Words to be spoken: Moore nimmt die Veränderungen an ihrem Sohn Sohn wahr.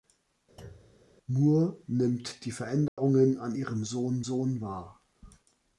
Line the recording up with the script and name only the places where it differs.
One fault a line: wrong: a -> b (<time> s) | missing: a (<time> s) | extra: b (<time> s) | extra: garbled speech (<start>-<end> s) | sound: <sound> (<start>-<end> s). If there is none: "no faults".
sound: thud (0.6-1.1 s)
sound: dropout (2.9-3.0 s)